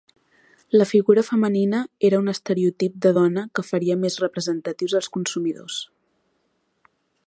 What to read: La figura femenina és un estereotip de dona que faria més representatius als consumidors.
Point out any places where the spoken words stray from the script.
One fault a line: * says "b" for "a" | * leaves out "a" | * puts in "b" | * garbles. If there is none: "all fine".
* says "era" for "és"